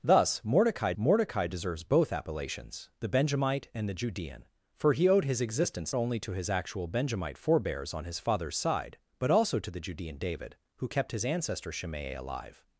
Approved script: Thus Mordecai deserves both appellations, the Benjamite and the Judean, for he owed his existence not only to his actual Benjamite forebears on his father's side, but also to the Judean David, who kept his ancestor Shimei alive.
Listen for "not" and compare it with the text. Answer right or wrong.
wrong